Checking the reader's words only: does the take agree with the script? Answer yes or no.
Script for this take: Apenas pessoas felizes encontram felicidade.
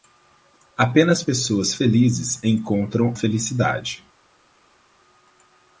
yes